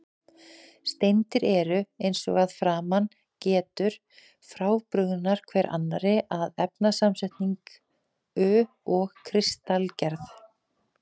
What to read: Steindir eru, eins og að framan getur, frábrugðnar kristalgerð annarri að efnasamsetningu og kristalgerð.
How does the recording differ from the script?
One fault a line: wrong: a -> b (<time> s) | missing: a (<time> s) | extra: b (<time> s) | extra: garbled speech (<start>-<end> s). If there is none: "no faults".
wrong: kristalgerð -> hver (5.5 s)